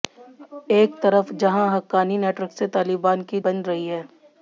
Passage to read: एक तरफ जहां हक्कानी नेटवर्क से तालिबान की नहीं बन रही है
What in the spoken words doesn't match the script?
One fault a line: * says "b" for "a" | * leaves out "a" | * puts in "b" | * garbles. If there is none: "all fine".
* leaves out "नहीं"